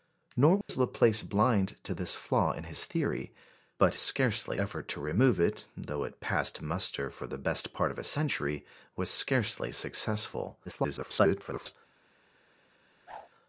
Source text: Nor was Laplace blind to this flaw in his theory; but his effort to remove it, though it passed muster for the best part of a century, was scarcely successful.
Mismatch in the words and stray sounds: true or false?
true